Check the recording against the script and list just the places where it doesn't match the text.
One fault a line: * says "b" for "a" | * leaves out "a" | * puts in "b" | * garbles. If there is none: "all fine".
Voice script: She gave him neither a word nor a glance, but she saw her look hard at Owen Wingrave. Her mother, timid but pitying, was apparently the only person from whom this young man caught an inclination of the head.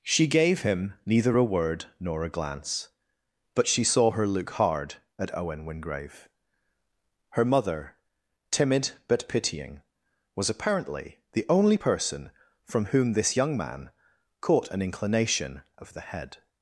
all fine